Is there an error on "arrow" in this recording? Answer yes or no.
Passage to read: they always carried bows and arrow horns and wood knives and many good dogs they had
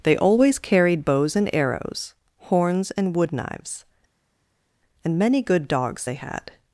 yes